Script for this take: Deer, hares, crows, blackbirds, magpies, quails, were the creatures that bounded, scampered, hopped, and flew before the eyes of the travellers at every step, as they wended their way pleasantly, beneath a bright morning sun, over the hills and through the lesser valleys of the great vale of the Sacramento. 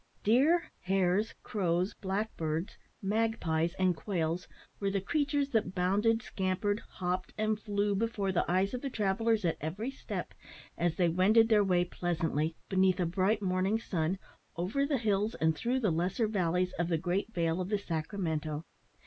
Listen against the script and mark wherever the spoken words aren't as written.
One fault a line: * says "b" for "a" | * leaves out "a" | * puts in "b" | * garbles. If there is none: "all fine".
* puts in "and"